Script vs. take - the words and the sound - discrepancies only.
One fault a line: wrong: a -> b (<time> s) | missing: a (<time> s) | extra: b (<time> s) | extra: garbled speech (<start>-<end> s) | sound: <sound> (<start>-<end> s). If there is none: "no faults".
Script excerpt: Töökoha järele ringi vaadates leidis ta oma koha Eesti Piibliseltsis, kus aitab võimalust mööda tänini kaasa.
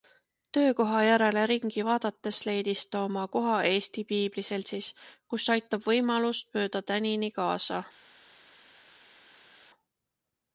no faults